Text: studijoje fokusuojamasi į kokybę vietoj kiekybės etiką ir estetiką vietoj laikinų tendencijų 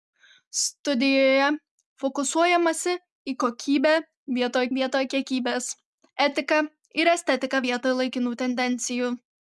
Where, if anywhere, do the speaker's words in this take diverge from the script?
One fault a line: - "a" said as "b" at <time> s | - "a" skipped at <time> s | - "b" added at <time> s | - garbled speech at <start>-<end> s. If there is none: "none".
- "vietoj" added at 4.8 s